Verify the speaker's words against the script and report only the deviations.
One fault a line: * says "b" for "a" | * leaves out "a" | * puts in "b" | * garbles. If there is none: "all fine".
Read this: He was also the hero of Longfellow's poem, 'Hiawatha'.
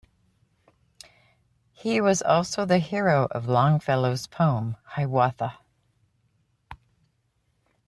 all fine